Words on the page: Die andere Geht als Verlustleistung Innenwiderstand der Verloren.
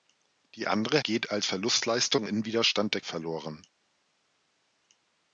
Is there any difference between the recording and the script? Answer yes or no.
no